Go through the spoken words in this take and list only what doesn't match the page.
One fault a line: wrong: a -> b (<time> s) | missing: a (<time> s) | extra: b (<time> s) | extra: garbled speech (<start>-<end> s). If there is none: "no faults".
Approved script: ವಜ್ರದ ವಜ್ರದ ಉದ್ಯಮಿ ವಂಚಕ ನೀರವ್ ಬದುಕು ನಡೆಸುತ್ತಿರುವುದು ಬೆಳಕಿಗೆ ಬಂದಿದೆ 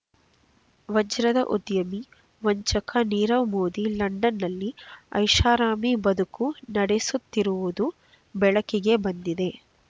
missing: ವಜ್ರದ (1.4 s)
extra: ಮೋದಿ ಲಂಡನ್‌ನಲ್ಲಿ ಐಷಾರಾಮಿ (3.5 s)